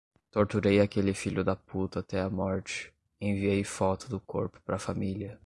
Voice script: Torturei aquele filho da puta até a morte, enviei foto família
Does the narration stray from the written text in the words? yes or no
yes